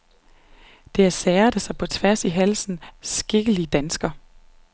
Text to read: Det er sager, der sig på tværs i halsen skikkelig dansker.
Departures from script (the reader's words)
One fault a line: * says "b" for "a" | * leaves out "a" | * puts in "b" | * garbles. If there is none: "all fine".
all fine